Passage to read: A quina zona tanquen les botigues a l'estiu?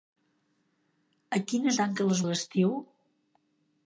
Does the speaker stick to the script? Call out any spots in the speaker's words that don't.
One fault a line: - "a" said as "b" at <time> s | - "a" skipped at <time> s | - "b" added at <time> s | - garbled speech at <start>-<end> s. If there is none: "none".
- "zona" skipped at 1.7 s
- "botigues" skipped at 2.2 s